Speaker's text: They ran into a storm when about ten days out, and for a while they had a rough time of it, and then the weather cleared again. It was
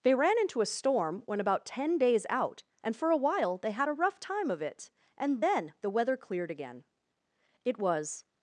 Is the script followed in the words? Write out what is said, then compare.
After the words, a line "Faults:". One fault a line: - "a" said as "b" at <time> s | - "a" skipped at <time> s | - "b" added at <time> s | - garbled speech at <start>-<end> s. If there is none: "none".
They ran into a storm when about ten days out, and for a while they had a rough time of it, and then the weather cleared again. It was
Faults:
none